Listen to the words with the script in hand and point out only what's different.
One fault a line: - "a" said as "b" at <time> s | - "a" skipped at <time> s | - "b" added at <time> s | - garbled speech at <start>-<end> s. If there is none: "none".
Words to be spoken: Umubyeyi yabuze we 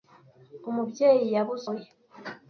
none